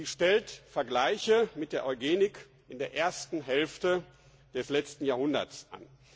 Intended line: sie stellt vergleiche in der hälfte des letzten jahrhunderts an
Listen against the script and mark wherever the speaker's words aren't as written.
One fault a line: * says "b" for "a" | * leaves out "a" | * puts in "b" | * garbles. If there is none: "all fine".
* puts in "mit der eugenik"
* puts in "ersten"